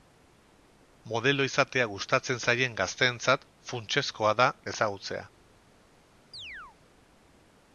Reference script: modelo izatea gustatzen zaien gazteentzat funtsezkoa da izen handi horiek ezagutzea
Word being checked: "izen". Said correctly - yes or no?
no